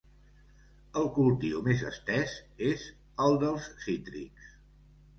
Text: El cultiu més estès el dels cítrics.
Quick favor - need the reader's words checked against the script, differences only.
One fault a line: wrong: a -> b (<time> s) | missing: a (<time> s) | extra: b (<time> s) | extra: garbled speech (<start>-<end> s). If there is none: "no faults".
extra: és (2.7 s)